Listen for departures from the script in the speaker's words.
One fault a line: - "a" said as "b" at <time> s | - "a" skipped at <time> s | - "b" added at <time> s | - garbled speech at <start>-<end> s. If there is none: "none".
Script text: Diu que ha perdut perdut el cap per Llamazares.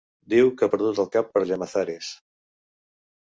- "perdut" skipped at 1.0 s